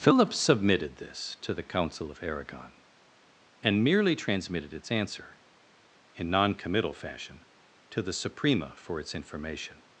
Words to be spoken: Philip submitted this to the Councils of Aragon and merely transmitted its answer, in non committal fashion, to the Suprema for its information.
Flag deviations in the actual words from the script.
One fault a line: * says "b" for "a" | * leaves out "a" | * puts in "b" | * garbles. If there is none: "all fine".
* says "Council" for "Councils"